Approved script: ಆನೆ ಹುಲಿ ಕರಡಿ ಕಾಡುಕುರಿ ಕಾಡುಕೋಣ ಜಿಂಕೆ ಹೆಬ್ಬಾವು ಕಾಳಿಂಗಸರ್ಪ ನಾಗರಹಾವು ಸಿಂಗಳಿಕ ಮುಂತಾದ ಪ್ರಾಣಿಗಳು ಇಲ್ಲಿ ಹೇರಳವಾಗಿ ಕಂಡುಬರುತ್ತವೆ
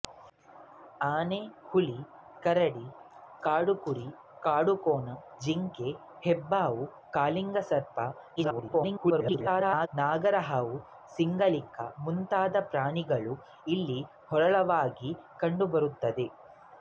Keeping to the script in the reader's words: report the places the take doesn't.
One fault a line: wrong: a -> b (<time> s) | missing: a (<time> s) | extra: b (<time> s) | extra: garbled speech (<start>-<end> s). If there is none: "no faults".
extra: garbled speech (8.4-9.9 s)